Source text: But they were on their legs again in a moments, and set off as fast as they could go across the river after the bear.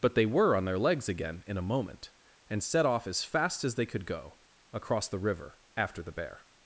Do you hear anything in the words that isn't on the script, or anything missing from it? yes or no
yes